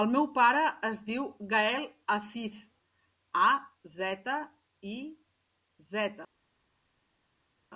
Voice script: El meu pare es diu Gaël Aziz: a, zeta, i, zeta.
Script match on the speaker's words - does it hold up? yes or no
yes